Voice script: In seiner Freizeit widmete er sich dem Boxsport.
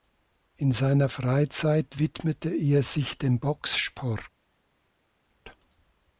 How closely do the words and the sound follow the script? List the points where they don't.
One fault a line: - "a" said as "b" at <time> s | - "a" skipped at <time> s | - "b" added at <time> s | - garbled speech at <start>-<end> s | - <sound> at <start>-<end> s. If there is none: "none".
none